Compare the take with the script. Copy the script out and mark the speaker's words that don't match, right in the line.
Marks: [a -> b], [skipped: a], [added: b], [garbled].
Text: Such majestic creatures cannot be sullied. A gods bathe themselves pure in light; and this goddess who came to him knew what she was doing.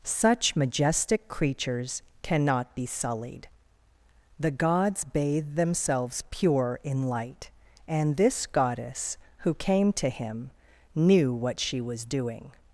Such majestic creatures cannot be sullied. [A -> The] gods bathe themselves pure in light; and this goddess who came to him knew what she was doing.